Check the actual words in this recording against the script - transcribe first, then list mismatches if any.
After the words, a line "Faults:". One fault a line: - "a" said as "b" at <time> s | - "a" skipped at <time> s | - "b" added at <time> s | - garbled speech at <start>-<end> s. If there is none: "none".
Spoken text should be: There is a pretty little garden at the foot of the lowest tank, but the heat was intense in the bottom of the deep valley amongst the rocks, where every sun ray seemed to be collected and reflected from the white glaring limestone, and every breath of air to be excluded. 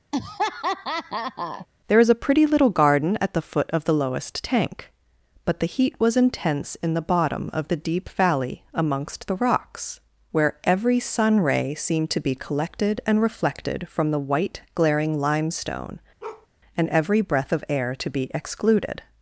There is a pretty little garden at the foot of the lowest tank, but the heat was intense in the bottom of the deep valley amongst the rocks, where every sun ray seemed to be collected and reflected from the white glaring limestone, and every breath of air to be excluded.
Faults:
none